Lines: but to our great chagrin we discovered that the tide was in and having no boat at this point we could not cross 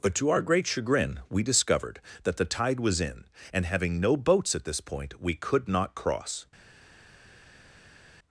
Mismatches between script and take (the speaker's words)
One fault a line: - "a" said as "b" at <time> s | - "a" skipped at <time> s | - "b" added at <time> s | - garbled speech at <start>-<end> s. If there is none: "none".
- "boat" said as "boats" at 4.2 s